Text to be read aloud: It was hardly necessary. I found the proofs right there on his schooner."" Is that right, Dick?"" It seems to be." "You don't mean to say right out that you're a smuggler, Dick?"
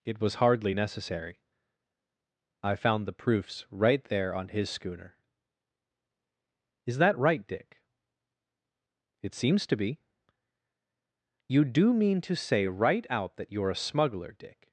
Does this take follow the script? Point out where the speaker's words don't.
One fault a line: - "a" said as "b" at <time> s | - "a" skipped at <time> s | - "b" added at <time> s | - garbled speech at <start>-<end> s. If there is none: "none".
- "don't" said as "do" at 11.6 s